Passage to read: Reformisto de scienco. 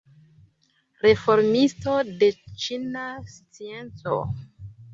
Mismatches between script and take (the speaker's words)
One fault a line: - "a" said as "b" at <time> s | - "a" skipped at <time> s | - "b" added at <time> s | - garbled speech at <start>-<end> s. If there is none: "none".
- "ĉina" added at 2.6 s